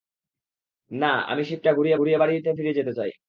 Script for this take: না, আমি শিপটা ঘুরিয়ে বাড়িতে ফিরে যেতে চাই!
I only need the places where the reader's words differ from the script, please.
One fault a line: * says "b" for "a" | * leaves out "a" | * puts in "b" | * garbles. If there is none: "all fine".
* puts in "ঘুরিয়ে"